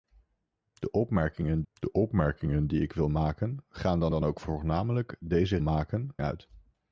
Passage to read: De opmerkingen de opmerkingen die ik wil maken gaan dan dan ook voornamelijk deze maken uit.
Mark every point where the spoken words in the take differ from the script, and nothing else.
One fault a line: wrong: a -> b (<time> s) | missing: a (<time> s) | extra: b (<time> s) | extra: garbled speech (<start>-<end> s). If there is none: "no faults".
no faults